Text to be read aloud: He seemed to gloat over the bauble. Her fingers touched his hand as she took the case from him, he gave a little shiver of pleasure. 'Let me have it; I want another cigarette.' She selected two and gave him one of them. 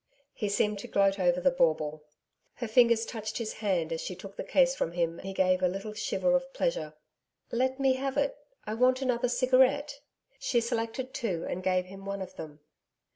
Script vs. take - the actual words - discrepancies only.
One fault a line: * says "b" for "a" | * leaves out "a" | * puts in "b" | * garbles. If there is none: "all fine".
all fine